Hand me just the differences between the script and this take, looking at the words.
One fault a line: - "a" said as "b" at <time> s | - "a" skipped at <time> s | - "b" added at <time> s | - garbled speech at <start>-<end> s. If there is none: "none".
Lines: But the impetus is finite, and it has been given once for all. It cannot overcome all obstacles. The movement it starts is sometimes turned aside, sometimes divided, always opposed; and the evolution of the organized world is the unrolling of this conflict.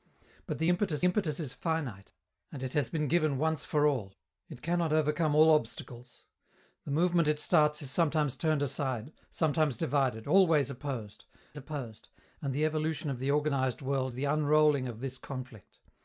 - "impetus" added at 1.1 s
- "opposed" added at 11.6 s
- "is" skipped at 14.1 s